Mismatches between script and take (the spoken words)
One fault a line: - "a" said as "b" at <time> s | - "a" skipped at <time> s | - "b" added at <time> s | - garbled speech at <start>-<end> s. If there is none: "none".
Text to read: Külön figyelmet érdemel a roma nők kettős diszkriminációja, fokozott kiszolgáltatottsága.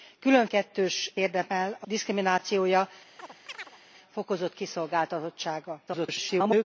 - "figyelmet" said as "kettős" at 0.5 s
- "roma nők kettős" skipped at 1.9 s
- garbled speech at 5.9-6.6 s